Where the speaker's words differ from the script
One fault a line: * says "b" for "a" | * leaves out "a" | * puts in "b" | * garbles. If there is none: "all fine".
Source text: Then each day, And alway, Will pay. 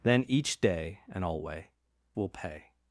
all fine